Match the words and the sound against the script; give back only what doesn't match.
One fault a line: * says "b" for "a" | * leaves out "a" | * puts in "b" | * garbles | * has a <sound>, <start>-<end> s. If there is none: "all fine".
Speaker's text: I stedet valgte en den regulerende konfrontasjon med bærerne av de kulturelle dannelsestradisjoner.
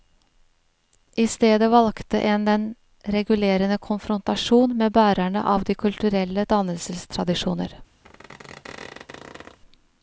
* has a squeak, 8.0-9.6 s